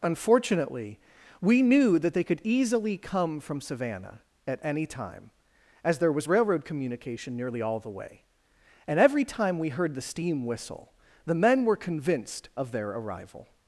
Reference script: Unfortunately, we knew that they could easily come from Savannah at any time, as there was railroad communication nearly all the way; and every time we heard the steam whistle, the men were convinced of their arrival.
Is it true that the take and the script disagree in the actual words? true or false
false